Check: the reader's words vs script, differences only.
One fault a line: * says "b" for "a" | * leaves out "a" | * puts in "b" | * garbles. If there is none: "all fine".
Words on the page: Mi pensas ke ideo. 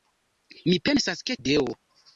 all fine